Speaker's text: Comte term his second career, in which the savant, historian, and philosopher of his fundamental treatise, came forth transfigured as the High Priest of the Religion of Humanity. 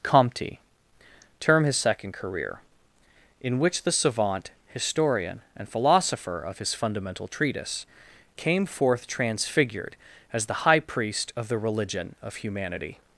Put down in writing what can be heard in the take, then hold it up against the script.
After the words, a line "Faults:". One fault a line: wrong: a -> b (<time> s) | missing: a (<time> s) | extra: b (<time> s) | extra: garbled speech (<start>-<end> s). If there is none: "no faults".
Comte term his second career, in which the savant, historian, and philosopher of his fundamental treatise, came forth transfigured as the High Priest of the Religion of Humanity.
Faults:
no faults